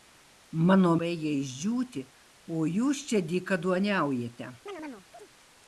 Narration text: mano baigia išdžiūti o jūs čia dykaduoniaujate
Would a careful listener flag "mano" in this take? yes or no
no